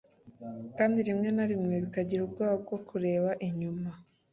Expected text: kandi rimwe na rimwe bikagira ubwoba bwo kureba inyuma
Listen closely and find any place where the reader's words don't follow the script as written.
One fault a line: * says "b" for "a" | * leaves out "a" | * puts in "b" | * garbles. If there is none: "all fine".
all fine